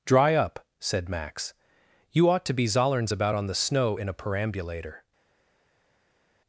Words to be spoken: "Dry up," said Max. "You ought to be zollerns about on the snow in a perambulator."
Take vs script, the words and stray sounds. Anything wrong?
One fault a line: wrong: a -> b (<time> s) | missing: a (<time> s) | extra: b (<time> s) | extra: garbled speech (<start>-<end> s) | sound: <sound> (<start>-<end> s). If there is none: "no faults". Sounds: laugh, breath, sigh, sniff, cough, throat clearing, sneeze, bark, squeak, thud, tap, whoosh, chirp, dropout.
no faults